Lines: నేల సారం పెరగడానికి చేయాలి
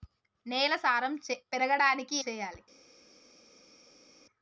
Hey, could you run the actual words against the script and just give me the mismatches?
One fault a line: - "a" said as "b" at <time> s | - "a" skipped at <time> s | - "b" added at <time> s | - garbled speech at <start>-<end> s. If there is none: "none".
none